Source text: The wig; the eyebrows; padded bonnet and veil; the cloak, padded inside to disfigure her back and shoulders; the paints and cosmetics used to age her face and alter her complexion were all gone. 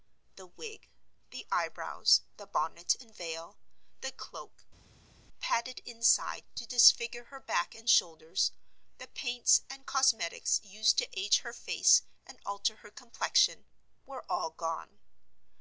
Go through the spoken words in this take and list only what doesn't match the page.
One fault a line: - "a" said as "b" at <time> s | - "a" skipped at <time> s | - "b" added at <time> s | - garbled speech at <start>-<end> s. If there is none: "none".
- "padded" said as "the" at 2.4 s